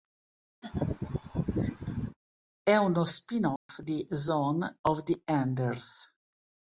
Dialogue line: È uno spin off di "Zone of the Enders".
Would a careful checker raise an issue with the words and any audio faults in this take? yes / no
yes